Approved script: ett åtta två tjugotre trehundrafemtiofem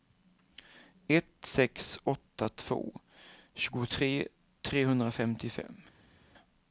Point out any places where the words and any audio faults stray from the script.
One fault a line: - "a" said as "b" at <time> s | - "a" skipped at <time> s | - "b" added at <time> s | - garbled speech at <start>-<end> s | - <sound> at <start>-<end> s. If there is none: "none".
- "sex" added at 1.4 s